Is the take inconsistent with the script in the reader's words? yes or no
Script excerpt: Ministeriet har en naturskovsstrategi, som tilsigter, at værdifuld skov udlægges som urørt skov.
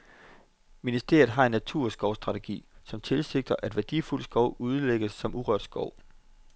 no